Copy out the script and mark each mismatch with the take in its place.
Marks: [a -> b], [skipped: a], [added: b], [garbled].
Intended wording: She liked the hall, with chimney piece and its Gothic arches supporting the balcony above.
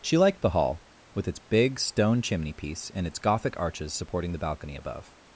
She liked the hall, with [added: its big stone] chimney piece and its Gothic arches supporting the balcony above.